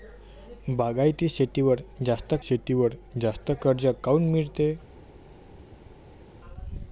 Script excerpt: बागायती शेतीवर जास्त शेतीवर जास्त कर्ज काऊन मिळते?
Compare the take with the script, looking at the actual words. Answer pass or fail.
pass